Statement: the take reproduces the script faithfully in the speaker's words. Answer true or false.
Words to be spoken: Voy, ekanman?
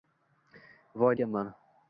true